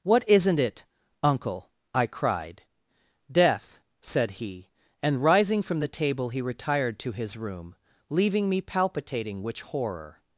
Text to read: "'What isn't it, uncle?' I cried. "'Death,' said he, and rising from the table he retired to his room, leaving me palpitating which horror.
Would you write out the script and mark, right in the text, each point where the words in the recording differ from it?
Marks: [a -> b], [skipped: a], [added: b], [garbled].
"'What isn't it, uncle?' I cried. "'Death,' said he, and rising from the table he retired to his room, leaving me palpitating which horror.